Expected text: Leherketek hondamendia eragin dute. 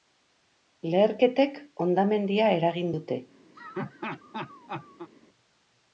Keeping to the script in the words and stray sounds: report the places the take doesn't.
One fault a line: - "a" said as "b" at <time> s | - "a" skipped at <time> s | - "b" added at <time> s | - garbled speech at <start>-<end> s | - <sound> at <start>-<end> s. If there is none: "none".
- laugh at 3.5-5.1 s